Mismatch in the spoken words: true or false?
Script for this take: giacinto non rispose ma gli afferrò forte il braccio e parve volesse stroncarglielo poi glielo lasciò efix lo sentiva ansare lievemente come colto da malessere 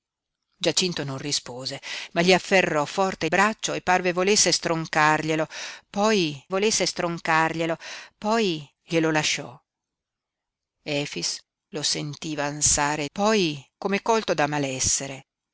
true